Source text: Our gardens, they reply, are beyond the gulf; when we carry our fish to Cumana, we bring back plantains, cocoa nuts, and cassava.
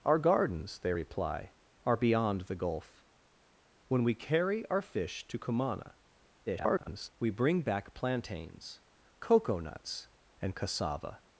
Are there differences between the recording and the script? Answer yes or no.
yes